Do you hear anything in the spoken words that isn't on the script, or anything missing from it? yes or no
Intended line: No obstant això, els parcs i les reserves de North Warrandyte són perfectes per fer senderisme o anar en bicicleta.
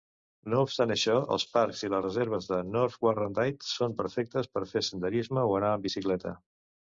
no